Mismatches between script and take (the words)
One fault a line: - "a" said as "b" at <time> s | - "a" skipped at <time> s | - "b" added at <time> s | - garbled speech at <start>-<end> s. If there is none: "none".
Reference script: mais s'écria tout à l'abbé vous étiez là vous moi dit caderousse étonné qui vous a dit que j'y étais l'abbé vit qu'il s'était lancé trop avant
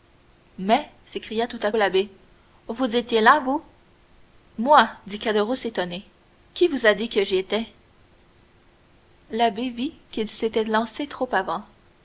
none